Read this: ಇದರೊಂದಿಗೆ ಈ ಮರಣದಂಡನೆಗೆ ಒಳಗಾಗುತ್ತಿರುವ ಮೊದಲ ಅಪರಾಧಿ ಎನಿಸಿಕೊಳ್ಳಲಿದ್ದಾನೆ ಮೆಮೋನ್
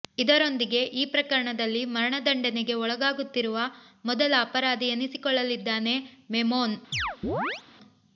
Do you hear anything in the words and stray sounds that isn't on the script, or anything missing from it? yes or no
yes